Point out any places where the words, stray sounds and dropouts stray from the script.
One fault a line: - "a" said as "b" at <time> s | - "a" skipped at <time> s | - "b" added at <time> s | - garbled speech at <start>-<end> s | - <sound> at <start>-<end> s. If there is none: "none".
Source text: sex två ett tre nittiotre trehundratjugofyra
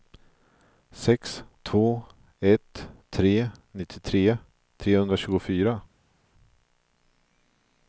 none